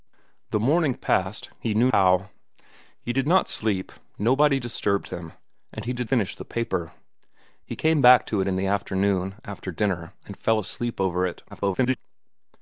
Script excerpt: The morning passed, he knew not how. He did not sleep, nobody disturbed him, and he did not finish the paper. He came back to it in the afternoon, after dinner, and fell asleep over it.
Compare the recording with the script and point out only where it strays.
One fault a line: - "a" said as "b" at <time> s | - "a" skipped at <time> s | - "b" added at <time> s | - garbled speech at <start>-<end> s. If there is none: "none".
- "not" skipped at 1.9 s
- "not" skipped at 6.1 s
- garbled speech at 11.5-12.0 s